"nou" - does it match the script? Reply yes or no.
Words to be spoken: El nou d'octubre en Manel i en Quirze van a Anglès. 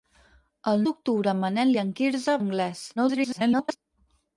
no